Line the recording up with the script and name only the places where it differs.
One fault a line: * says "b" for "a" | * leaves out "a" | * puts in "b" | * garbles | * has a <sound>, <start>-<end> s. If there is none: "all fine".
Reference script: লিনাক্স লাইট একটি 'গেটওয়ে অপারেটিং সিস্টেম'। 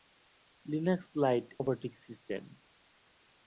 * leaves out "একটি গেটওয়ে"